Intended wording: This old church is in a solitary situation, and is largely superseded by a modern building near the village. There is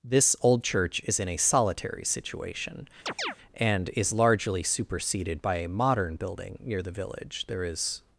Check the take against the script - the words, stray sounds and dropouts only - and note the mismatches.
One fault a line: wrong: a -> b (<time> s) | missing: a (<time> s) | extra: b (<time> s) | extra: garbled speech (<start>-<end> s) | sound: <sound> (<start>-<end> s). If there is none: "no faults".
sound: chirp (3.1-3.4 s)